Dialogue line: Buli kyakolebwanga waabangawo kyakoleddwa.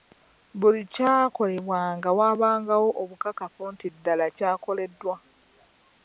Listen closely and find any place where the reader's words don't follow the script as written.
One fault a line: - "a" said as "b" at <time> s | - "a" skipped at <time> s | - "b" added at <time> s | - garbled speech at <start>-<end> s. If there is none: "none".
- "obukakafu nti ddala" added at 3.0 s